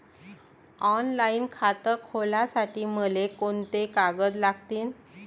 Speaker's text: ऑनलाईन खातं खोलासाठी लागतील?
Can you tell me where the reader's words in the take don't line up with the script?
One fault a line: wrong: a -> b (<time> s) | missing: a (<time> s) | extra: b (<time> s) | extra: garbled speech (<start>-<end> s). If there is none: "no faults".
extra: मले कोंते कागद (2.9 s)